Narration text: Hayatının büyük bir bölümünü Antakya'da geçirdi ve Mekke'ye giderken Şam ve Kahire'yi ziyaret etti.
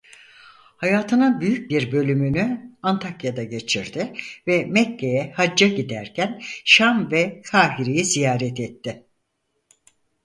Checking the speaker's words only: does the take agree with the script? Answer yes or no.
no